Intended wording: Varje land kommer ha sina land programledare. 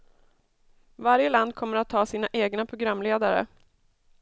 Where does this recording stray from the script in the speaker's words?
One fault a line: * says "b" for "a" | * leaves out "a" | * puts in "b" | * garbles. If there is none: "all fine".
* puts in "att"
* says "egna" for "land"